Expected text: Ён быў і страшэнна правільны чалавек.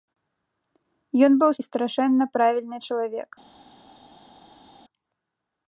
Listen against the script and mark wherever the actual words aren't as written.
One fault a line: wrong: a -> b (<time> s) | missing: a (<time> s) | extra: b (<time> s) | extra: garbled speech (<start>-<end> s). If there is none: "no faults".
no faults